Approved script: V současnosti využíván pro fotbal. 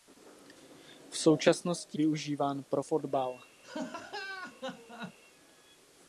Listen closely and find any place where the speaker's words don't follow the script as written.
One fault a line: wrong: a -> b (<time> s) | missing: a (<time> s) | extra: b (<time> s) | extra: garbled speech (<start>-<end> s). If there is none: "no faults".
no faults